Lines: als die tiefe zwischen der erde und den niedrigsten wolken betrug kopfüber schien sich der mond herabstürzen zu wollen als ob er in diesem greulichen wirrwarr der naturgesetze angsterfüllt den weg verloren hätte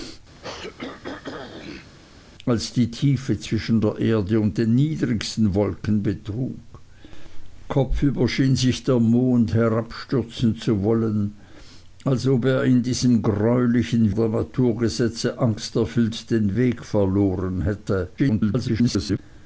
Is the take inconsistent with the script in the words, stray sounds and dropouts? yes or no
yes